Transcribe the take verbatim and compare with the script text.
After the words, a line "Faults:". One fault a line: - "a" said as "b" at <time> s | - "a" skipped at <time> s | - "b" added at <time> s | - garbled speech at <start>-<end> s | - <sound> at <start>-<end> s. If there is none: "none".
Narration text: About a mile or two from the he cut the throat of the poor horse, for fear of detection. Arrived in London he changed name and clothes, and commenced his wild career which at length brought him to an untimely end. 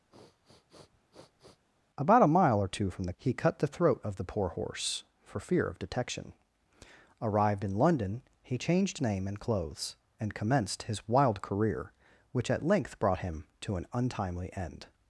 About a mile or two from the he cut the throat of the poor horse, for fear of detection. Arrived in London he changed name and clothes, and commenced his wild career which at length brought him to an untimely end.
Faults:
- sniff at 0.1-1.7 s